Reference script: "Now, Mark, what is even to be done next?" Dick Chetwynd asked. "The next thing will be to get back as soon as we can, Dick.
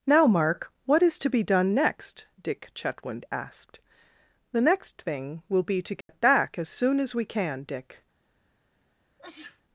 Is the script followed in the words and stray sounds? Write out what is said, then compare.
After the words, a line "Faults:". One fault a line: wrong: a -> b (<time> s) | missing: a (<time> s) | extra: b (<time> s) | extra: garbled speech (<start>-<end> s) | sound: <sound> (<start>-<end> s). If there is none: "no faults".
"Now, Mark, what is to be done next?" Dick Chetwynd asked. "The next thing will be to get back as soon as we can, Dick.
Faults:
missing: even (1.2 s)
sound: dropout (6.0-6.1 s)
sound: sneeze (9.2-9.6 s)